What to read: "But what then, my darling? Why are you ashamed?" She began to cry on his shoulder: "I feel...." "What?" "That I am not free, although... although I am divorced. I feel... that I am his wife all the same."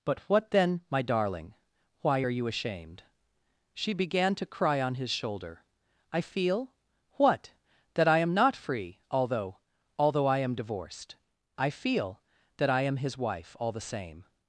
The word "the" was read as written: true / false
true